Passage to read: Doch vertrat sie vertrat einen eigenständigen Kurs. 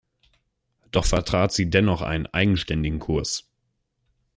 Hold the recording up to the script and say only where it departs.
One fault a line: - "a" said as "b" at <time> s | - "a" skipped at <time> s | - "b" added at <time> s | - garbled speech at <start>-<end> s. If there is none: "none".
- "vertrat" said as "dennoch" at 1.7 s